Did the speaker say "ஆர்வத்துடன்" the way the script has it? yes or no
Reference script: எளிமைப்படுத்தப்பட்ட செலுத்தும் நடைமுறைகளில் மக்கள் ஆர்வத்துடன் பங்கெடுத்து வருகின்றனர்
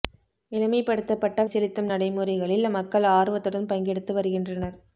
yes